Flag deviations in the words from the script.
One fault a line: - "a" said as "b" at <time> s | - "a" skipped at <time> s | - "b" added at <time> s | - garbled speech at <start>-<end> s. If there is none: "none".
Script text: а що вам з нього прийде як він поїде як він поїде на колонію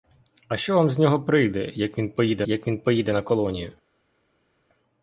none